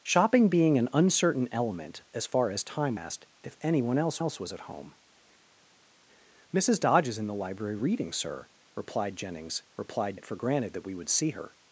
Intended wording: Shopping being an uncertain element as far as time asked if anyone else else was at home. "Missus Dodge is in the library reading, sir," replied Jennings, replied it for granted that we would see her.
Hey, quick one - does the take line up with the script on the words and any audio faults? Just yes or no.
yes